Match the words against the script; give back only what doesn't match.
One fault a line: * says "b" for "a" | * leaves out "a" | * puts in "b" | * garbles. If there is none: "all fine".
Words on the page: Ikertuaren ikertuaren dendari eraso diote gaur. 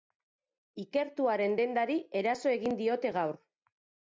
* leaves out "ikertuaren"
* puts in "egin"